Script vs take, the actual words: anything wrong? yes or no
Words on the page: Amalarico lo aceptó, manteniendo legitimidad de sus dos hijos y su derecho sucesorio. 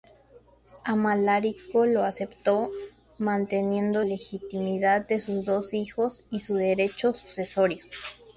no